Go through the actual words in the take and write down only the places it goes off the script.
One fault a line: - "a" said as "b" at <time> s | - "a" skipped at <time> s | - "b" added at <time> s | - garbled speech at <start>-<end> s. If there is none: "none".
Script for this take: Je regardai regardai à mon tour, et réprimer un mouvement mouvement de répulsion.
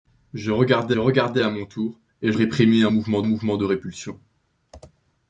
none